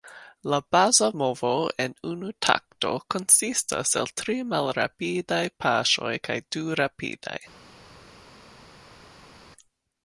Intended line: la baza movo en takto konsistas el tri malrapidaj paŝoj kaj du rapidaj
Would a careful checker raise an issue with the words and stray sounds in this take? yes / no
yes